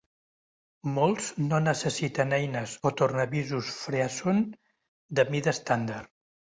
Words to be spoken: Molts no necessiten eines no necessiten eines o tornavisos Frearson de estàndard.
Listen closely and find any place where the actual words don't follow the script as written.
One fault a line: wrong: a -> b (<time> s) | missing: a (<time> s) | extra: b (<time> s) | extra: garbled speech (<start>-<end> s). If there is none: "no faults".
missing: no necessiten eines (2.8 s)
extra: mida (5.4 s)